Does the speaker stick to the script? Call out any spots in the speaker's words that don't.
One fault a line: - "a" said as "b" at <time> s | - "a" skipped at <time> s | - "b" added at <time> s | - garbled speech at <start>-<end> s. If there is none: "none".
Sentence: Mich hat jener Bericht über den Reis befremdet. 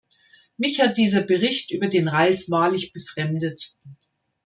- "jener" said as "dieser" at 1.0 s
- "wahrlich" added at 2.5 s